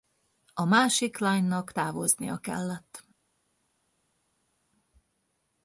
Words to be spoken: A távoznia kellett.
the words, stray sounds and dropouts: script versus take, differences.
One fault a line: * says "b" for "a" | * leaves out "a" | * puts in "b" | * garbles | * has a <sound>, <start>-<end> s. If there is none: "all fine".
* puts in "másik lánynak"